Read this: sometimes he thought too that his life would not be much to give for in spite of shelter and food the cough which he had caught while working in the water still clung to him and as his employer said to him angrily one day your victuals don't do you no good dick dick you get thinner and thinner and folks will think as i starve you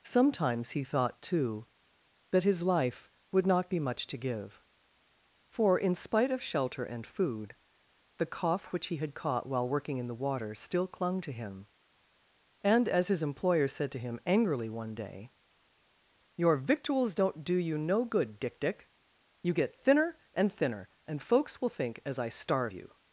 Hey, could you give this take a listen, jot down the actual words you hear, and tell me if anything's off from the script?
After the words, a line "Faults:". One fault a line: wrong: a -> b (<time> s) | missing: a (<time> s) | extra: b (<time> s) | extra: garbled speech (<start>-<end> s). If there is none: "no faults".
sometimes he thought too that his life would not be much to give for in spite of shelter and food the cough which he had caught while working in the water still clung to him and as his employer said to him angrily one day your victuals don't do you no good dick dick you get thinner and thinner and folks will think as i starve you
Faults:
no faults